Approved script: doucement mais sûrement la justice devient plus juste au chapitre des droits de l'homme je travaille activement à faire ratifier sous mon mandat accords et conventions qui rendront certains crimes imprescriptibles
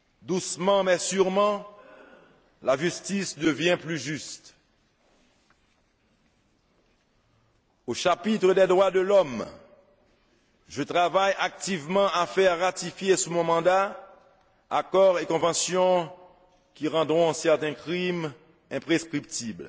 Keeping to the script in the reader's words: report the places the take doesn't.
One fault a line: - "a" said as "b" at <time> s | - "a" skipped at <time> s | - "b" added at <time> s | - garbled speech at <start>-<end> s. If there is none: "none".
none